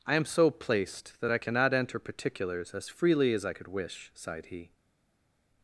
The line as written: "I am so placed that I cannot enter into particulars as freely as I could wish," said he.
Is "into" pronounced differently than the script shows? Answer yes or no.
yes